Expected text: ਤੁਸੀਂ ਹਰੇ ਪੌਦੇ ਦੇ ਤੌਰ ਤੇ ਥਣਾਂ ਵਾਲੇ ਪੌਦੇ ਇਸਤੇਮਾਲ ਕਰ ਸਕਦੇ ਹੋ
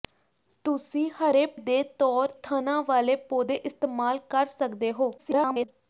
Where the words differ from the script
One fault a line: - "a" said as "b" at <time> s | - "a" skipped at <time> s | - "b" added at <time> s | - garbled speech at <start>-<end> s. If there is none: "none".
- "ਪੌਦੇ" skipped at 1.4 s
- "ਤੇ" skipped at 2.3 s
- garbled speech at 5.2-5.7 s